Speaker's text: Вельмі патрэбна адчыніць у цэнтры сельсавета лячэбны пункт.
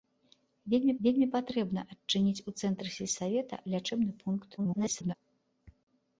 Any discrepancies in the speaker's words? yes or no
yes